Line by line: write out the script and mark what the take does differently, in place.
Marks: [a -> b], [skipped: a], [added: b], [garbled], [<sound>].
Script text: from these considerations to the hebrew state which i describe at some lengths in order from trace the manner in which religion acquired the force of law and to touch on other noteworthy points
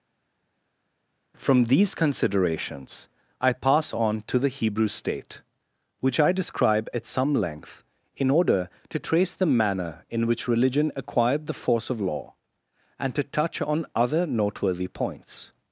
from these considerations [added: i pass on] to the hebrew state which i describe at some [lengths -> length] in order [from -> to] trace the manner in which religion acquired the force of law and to touch on other noteworthy points